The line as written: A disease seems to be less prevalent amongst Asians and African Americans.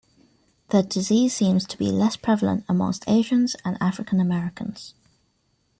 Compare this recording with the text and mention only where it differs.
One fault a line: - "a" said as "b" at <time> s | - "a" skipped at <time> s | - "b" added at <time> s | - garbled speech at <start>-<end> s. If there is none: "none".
- "A" said as "The" at 0.7 s